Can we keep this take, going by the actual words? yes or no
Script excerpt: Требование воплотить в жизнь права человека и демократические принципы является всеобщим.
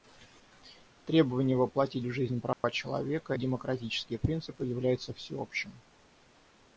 no